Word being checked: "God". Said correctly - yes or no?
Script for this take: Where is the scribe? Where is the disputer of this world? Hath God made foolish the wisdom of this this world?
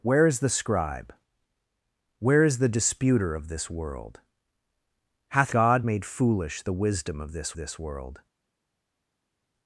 yes